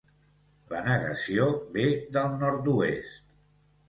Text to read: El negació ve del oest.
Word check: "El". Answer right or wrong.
wrong